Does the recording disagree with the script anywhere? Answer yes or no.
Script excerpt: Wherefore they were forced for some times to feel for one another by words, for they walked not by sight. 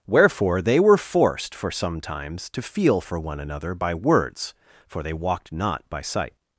no